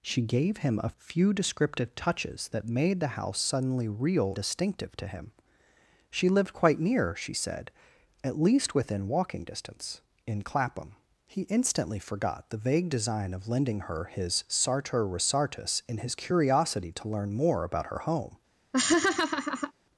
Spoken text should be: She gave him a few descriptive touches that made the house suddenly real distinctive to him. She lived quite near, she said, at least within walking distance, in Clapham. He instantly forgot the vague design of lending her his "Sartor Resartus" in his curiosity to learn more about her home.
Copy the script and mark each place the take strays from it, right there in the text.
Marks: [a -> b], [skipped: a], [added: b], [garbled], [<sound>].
She gave him a few descriptive touches that made the house suddenly real distinctive to him. She lived quite near, she said, at least within walking distance, in Clapham. He instantly forgot the vague design of lending her his "Sartor Resartus" in his curiosity to learn more about her home. [laugh]